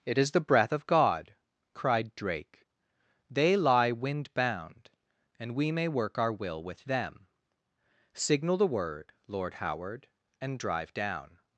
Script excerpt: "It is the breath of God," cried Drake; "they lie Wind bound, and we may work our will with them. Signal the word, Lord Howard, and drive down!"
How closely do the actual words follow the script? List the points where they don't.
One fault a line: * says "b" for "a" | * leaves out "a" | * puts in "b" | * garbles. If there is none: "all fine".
all fine